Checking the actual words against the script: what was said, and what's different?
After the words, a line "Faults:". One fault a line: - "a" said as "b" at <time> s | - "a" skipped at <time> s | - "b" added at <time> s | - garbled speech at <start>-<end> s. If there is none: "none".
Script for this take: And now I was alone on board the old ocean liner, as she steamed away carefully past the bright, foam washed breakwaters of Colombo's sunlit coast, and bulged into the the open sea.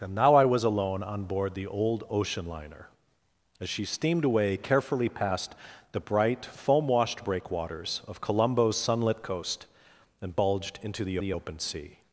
And now I was alone on board the old ocean liner, as she steamed away carefully past the bright, foam washed breakwaters of Colombo's sunlit coast, and bulged into the the open sea.
Faults:
none